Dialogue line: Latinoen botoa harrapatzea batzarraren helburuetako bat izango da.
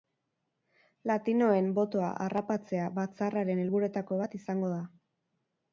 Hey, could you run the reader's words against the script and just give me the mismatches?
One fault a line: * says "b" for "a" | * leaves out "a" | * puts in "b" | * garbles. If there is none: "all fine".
all fine